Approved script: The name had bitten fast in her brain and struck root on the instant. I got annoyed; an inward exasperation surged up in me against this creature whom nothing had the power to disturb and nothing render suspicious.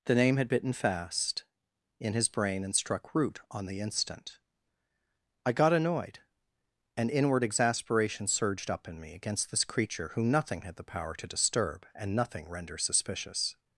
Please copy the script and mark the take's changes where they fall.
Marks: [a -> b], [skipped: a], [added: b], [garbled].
The name had bitten fast in [her -> his] brain and struck root on the instant. I got annoyed; an inward exasperation surged up in me against this creature whom nothing had the power to disturb and nothing render suspicious.